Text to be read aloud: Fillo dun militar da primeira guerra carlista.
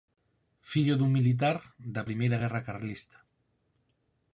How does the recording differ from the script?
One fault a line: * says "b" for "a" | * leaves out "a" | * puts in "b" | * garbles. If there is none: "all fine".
all fine